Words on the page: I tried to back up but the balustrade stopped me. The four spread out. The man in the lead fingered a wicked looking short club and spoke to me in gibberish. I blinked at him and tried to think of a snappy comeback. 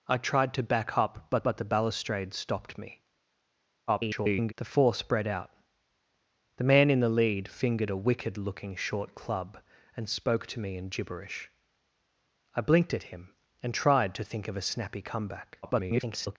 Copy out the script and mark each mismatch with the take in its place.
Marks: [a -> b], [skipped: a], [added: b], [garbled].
I tried to back up but [added: but] the balustrade stopped me. [garbled] The four spread out. The man in the lead fingered a wicked looking short club and spoke to me in gibberish. I blinked at him and tried to think of a snappy comeback. [garbled]